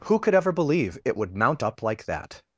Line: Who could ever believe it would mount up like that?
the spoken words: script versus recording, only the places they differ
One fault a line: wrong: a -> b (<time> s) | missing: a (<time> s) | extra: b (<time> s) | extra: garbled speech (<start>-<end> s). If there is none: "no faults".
no faults